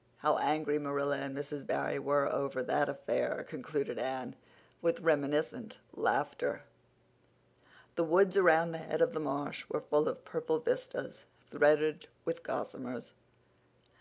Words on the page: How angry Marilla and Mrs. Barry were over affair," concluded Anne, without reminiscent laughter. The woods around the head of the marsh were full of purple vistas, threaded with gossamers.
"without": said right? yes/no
no